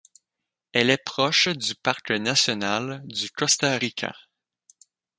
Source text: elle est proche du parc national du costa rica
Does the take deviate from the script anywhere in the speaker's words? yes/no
no